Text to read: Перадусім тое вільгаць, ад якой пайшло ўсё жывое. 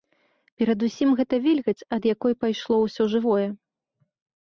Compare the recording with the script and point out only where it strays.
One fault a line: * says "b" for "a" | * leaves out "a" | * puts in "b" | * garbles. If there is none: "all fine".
* says "гэта" for "тое"